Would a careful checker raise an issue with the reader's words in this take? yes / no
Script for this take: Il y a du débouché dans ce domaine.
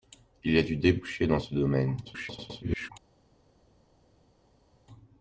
yes